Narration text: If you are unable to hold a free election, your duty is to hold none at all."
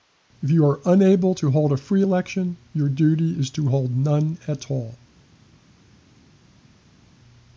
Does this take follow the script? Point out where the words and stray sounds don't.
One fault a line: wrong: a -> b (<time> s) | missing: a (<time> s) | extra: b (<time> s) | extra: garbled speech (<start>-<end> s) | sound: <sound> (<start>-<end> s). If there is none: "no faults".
no faults